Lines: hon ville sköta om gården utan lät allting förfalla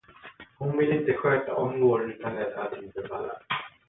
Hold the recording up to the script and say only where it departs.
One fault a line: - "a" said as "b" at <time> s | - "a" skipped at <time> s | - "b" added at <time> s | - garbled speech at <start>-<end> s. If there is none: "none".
- "inte" added at 0.9 s